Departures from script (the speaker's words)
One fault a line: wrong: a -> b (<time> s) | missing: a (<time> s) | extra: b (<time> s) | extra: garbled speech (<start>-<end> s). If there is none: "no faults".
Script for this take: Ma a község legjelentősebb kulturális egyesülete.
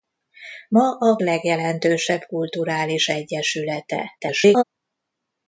missing: község (1.2 s)
extra: garbled speech (4.2-4.6 s)